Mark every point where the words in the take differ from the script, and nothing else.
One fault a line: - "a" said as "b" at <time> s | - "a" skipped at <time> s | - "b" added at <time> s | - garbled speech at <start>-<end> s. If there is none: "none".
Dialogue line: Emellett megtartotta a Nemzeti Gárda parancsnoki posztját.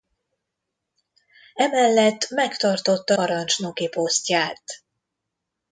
- "a Nemzeti Gárda" skipped at 3.1 s